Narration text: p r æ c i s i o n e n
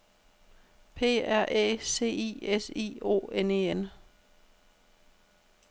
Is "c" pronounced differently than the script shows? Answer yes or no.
no